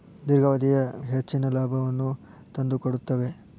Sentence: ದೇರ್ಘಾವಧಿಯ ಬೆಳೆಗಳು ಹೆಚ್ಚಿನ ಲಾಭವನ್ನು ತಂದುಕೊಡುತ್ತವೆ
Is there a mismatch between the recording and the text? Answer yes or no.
yes